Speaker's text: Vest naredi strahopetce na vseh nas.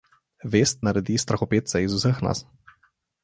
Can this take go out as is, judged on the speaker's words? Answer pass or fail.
fail